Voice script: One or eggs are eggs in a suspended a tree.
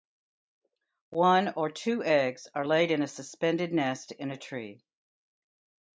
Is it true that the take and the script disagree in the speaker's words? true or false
true